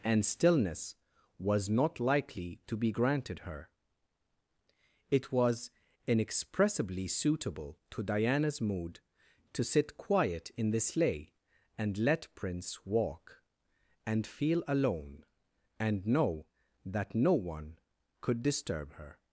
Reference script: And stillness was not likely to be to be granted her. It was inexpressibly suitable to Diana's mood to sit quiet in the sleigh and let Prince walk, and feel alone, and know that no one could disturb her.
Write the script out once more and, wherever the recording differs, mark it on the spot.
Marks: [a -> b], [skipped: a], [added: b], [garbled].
And stillness was not likely to be [skipped: to be] granted her. It was inexpressibly suitable to Diana's mood to sit quiet in the sleigh and let Prince walk, and feel alone, and know that no one could disturb her.